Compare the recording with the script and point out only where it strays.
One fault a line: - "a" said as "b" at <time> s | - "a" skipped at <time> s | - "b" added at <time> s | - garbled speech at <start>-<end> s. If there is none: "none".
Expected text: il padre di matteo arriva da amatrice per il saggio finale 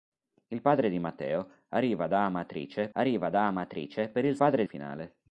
- "arriva da amatrice" added at 2.9 s
- "saggio" said as "padre" at 4.4 s